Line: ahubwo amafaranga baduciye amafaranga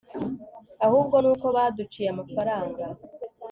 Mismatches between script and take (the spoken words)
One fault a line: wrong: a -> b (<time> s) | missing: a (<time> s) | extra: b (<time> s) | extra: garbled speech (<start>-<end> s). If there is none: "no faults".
wrong: amafaranga -> nuko (1.2 s)